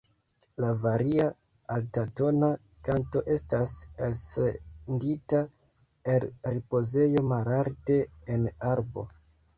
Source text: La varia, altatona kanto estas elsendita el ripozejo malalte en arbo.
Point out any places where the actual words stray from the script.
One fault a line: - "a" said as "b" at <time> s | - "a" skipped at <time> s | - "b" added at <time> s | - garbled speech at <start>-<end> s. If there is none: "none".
none